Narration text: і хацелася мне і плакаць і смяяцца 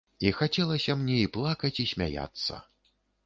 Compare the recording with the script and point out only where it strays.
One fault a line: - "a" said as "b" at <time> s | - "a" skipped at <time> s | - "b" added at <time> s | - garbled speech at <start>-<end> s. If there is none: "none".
none